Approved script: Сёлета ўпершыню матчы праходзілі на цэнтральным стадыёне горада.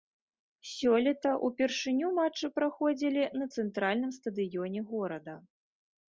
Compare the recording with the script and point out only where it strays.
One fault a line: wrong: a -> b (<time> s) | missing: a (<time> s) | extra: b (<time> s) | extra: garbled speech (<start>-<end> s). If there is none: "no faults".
no faults